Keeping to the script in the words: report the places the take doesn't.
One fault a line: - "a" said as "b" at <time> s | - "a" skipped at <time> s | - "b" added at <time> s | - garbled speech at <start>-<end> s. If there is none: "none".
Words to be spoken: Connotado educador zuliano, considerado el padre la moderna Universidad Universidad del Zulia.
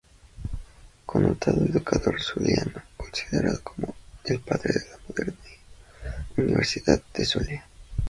- "como" added at 3.6 s
- "de" added at 4.7 s
- "Universidad" skipped at 7.0 s